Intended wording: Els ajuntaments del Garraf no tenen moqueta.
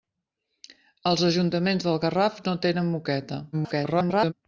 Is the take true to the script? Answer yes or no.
no